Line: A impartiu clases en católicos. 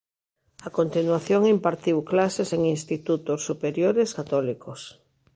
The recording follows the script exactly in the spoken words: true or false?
false